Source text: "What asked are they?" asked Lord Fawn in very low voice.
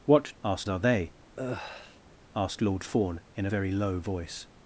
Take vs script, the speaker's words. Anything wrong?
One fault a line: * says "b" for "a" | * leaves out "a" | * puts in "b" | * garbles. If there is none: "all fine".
all fine